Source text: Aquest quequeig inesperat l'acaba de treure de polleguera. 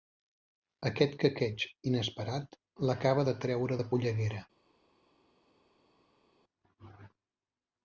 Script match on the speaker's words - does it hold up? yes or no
yes